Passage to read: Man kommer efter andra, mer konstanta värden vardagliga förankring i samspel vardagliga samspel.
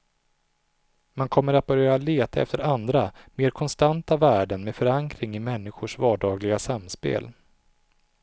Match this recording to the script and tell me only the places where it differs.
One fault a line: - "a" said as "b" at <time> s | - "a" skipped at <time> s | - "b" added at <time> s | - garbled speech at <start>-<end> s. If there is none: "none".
- "att börja leta" added at 1.5 s
- "vardagliga" said as "med" at 4.6 s
- "samspel" said as "människors" at 5.4 s